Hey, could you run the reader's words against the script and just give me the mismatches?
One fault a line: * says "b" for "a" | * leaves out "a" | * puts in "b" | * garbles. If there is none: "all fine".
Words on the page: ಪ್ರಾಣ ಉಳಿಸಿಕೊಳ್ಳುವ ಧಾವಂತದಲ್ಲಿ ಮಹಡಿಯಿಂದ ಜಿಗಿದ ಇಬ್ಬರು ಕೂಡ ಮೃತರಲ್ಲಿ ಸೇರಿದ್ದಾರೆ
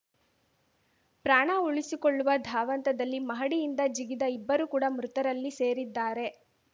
all fine